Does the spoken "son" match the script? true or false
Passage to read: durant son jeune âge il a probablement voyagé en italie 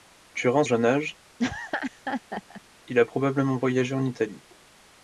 false